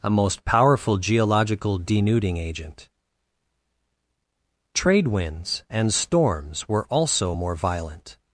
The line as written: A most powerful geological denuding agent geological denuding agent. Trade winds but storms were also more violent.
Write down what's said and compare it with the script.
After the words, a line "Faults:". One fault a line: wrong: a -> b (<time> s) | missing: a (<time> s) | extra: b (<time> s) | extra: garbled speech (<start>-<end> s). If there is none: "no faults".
A most powerful geological denuding agent. Trade winds and storms were also more violent.
Faults:
missing: geological denuding agent (2.9 s)
wrong: but -> and (5.7 s)